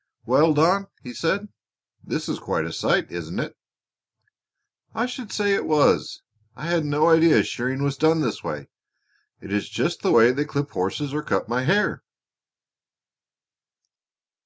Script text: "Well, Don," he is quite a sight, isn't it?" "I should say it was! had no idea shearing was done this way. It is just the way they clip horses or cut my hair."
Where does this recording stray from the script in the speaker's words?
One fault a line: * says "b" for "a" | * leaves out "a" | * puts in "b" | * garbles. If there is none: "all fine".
* puts in "said this"
* puts in "I"